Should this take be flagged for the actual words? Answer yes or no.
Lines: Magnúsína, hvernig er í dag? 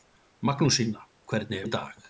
no